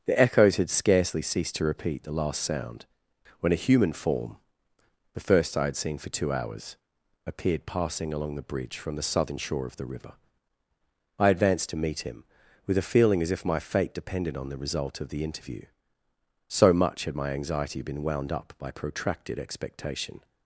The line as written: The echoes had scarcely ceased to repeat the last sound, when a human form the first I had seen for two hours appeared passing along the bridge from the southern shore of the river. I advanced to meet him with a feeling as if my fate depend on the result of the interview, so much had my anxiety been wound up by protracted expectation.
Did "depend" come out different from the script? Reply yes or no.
yes